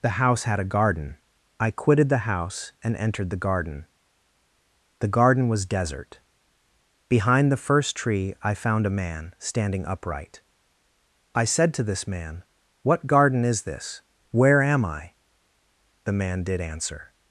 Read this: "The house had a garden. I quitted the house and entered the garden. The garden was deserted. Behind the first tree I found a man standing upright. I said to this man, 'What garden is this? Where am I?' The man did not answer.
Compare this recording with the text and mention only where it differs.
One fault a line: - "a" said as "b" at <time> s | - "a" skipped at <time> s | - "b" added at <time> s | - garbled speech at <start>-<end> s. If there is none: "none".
- "deserted" said as "desert" at 5.7 s
- "not" skipped at 16.6 s